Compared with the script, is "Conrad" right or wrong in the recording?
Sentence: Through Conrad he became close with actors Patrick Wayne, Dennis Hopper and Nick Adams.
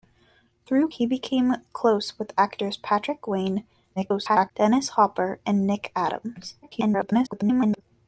wrong